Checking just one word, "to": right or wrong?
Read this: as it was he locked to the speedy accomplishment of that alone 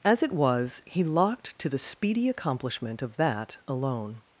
right